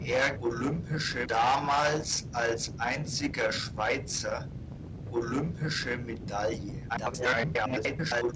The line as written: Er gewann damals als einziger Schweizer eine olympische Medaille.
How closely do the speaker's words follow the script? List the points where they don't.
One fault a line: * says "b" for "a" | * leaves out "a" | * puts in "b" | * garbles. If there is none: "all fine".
* says "olympische" for "gewann"
* leaves out "eine"
* garbles